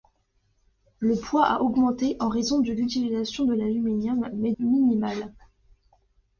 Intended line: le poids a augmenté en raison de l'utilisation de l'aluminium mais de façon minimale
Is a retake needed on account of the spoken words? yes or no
yes